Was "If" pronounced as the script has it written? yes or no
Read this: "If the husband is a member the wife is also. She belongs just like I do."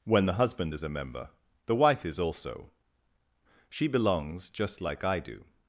no